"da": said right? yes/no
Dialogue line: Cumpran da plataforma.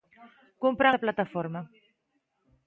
yes